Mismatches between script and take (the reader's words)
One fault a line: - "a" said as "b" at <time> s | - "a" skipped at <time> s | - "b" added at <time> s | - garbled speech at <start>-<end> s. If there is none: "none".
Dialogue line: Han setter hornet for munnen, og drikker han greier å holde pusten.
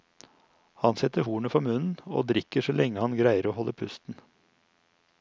- "så lenge" added at 2.6 s